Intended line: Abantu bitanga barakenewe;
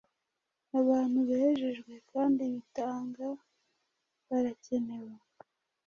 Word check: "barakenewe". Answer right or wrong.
right